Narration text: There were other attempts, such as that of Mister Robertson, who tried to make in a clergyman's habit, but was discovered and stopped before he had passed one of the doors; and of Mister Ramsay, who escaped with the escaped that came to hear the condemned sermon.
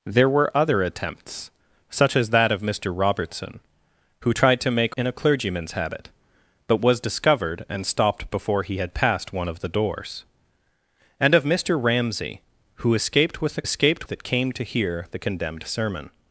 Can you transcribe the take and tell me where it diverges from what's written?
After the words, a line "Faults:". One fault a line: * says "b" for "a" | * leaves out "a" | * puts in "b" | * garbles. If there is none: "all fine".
There were other attempts, such as that of Mister Robertson, who tried to make in a clergyman's habit, but was discovered and stopped before he had passed one of the doors; and of Mister Ramsay, who escaped with the escaped that came to hear the condemned sermon.
Faults:
all fine